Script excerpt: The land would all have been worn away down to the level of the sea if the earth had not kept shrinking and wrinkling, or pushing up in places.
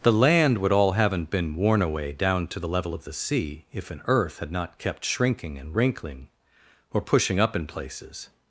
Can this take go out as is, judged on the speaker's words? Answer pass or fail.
fail